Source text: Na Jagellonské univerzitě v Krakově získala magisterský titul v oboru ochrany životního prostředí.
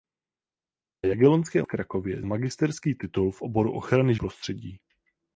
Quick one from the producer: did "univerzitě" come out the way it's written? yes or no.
no